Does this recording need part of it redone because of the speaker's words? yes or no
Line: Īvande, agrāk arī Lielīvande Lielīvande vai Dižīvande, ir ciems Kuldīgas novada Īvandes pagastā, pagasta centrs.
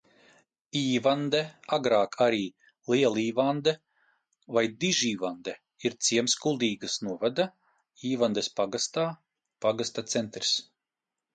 yes